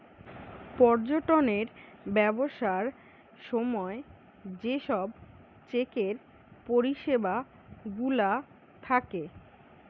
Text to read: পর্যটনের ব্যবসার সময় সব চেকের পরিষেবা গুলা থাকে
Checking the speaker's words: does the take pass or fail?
fail